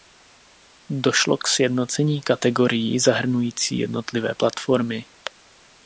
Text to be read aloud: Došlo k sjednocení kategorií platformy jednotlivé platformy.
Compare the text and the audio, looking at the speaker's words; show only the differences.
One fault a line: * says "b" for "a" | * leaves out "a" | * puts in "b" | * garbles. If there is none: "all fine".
* says "zahrnující" for "platformy"